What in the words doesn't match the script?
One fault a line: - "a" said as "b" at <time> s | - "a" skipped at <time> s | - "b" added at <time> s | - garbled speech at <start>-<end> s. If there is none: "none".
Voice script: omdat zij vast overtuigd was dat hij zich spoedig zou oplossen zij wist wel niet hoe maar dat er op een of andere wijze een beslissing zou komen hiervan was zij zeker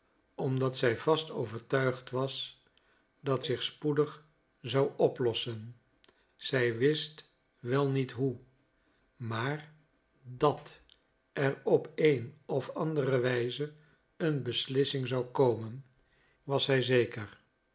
- "hij" skipped at 3.4 s
- "hiervan" skipped at 15.9 s